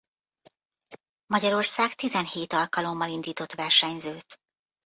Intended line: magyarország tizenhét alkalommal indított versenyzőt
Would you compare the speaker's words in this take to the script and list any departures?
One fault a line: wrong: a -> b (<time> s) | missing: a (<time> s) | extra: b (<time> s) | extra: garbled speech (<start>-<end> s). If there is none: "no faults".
no faults